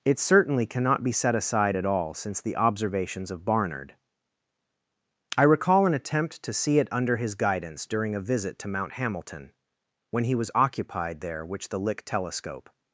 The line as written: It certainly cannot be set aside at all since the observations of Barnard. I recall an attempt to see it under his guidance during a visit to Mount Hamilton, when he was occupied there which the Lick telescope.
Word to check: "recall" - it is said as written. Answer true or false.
true